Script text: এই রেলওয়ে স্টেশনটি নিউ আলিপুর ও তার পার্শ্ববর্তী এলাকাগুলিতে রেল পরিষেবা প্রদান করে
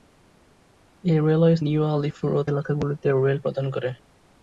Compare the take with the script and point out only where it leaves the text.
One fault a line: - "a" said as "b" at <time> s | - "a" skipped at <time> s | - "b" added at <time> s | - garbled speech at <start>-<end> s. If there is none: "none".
- "স্টেশনটি" skipped at 1.6 s
- "তার পার্শ্ববর্তী" skipped at 2.5 s
- "পরিষেবা" skipped at 3.4 s